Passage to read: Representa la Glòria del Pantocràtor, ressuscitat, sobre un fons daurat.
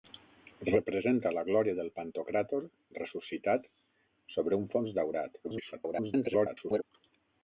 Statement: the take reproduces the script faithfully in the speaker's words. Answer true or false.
false